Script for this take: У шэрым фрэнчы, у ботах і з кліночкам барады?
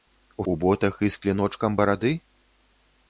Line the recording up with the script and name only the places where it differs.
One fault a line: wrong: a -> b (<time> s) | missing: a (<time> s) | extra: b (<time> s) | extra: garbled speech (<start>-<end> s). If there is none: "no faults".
missing: шэрым фрэнчы (0.5 s)